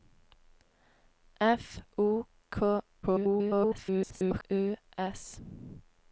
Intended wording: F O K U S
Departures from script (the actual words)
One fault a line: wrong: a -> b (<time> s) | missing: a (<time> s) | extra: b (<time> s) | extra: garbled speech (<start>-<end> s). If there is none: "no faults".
extra: garbled speech (3.0-4.4 s)